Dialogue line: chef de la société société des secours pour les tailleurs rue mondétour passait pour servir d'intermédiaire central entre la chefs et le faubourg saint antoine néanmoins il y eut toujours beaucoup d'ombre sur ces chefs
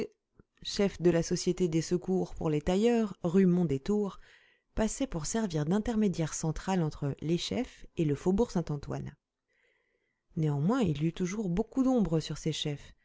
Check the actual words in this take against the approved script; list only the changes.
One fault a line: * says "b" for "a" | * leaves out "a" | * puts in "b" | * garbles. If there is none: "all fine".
* leaves out "société"
* says "les" for "la"